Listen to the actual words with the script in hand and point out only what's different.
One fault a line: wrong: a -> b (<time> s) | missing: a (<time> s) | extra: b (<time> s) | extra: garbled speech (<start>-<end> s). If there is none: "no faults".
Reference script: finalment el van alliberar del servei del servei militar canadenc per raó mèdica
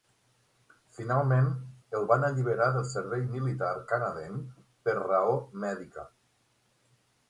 missing: del servei (3.3 s)